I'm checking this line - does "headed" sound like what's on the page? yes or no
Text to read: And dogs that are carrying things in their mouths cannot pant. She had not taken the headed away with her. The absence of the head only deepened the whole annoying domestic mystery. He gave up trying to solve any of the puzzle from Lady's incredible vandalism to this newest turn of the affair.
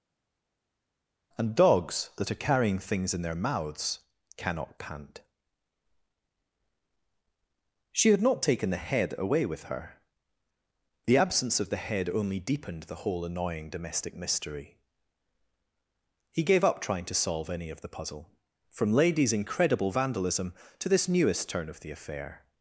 no